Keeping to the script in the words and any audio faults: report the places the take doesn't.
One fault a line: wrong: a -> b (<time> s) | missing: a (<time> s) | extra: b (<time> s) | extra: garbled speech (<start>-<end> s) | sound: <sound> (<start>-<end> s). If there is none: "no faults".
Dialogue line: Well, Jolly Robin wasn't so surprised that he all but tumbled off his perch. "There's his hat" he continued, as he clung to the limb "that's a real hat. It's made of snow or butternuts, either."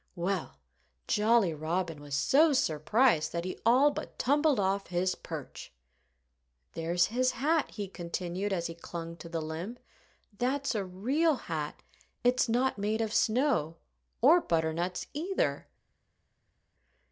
wrong: wasn't -> was (2.0 s)
extra: not (12.5 s)